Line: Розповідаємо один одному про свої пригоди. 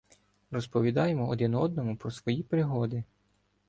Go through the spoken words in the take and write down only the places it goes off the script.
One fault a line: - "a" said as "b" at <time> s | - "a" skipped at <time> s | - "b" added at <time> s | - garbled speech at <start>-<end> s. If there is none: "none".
none